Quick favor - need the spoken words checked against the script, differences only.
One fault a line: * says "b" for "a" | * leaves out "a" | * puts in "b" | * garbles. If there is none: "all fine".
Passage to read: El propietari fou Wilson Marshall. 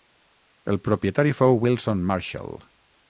all fine